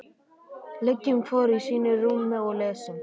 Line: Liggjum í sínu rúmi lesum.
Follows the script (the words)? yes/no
no